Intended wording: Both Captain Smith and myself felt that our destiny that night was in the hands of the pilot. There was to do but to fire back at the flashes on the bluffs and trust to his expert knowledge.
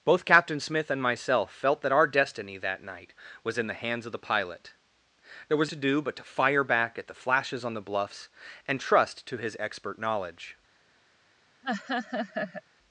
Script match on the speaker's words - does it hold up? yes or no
yes